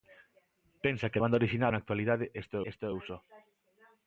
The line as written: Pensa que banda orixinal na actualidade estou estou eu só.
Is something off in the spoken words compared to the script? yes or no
no